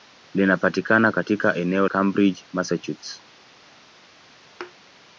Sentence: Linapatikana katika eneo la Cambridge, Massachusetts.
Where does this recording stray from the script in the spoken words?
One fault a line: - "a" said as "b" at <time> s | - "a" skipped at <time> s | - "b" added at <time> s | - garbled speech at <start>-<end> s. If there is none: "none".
- "la" skipped at 1.9 s